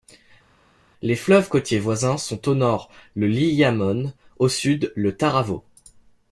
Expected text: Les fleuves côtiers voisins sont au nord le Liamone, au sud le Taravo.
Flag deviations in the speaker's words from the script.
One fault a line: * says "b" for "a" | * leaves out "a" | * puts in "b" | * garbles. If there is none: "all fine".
all fine